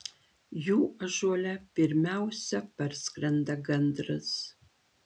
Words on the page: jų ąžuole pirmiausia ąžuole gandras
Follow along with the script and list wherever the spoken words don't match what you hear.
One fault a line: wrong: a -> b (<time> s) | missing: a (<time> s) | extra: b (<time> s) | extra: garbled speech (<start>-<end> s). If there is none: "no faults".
wrong: ąžuole -> parskrenda (2.8 s)